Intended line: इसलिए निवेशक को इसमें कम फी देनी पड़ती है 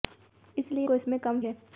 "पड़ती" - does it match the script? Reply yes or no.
no